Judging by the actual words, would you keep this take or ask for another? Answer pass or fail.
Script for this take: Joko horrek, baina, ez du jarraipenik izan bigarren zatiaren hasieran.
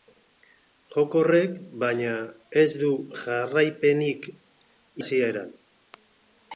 fail